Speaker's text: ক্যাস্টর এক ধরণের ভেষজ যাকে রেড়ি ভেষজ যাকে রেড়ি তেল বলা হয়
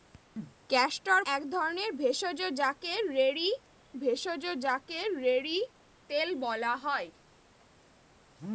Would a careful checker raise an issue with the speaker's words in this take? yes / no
no